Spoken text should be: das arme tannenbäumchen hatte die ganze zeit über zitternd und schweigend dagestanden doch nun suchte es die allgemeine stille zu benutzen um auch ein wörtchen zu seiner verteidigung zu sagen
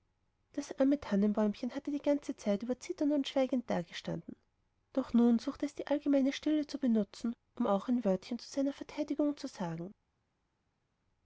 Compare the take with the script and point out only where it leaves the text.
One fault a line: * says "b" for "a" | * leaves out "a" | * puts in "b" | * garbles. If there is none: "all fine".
all fine